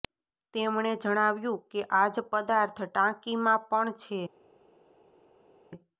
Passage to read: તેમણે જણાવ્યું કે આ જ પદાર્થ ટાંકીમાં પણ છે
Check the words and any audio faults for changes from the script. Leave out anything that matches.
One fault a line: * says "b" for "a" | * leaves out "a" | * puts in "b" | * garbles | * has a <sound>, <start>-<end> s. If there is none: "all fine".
all fine